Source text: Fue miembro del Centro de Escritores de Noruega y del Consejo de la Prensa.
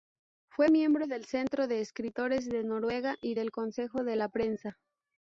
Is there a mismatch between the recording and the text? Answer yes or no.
no